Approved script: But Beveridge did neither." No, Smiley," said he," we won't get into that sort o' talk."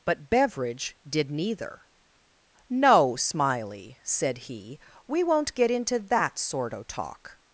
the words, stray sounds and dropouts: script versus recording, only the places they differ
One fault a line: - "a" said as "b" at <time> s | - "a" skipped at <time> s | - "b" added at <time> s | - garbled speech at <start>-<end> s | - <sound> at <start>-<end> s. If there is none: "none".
none